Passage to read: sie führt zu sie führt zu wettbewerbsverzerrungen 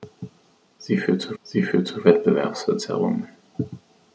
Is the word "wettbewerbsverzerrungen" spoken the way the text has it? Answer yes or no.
yes